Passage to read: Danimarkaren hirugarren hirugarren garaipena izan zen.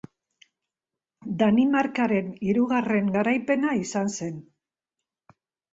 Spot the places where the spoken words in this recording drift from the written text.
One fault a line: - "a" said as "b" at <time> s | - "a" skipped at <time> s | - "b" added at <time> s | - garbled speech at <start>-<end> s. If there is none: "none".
- "hirugarren" skipped at 3.1 s